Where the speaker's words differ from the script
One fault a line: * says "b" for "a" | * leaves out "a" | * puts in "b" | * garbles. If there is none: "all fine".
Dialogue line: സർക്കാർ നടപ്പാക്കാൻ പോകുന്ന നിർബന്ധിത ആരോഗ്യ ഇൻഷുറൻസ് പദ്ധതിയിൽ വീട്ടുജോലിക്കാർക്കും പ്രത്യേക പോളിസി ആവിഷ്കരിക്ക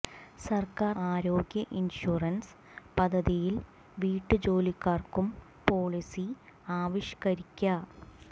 * leaves out "നടപ്പാക്കാൻ പോകുന്ന നിർബന്ധിത"
* leaves out "പ്രത്യേക"